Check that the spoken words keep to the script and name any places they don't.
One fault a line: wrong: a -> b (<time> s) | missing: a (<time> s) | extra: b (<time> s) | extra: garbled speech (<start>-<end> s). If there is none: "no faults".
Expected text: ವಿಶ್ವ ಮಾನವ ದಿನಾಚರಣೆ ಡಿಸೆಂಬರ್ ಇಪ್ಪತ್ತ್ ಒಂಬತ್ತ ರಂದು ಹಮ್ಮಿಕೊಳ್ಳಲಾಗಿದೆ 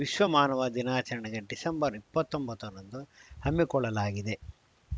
no faults